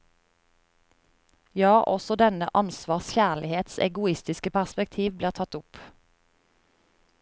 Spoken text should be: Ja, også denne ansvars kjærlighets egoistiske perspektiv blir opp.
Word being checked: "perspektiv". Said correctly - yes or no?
yes